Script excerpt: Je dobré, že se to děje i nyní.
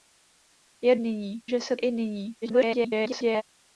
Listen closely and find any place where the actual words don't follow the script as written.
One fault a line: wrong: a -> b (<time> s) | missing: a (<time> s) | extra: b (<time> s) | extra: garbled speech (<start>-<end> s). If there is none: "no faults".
wrong: dobré -> nyní (1.0 s)
missing: to děje (1.8 s)
extra: garbled speech (2.4-3.4 s)